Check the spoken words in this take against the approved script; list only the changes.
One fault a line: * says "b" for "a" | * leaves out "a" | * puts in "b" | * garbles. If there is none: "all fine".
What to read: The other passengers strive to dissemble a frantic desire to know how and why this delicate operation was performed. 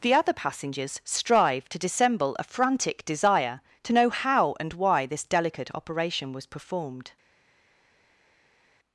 all fine